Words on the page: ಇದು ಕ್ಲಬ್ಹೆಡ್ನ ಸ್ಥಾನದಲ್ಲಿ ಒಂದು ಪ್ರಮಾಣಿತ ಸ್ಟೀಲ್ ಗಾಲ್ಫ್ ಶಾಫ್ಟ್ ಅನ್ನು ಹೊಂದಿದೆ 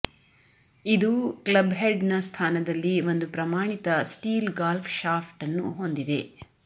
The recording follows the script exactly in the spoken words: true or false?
true